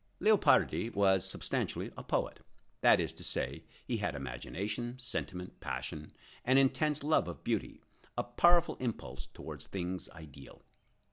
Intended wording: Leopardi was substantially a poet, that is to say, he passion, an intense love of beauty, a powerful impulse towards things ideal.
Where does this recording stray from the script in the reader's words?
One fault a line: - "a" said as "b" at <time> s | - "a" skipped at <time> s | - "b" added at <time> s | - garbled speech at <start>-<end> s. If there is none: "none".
- "had imagination sentiment" added at 4.0 s